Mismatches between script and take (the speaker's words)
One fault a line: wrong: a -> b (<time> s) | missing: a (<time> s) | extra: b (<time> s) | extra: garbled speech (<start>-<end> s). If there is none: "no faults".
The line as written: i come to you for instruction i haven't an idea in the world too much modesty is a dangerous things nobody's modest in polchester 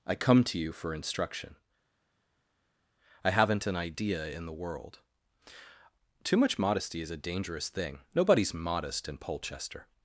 wrong: things -> thing (7.7 s)